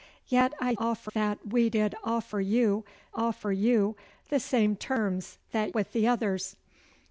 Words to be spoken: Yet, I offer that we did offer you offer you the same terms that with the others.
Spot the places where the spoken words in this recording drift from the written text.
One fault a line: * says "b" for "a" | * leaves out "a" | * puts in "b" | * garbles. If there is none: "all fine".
all fine